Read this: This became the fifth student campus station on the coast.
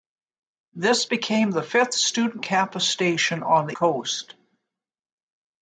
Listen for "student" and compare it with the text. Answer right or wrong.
right